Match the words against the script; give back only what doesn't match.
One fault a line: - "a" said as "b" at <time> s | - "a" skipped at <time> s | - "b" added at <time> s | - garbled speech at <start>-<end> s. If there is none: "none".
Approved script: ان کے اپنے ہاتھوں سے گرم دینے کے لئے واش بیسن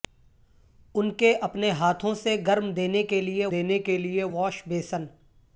- "دینے کے لئے" added at 3.5 s